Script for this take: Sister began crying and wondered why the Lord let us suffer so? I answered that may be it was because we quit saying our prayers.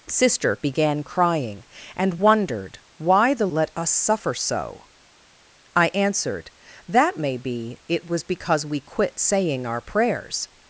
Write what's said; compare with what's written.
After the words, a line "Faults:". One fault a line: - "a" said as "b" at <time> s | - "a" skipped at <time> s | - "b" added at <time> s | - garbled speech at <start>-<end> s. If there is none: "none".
Sister began crying and wondered why the Let us suffer so? I answered that may be it was because we quit saying our prayers.
Faults:
- "Lord" skipped at 3.5 s